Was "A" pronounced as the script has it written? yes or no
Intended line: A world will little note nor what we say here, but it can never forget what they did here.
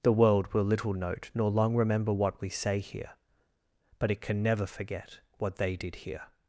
no